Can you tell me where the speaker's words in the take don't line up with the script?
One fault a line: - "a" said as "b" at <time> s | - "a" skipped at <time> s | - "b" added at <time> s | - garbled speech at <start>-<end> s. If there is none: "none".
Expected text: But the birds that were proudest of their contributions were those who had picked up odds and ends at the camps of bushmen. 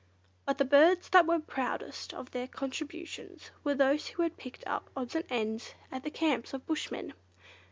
none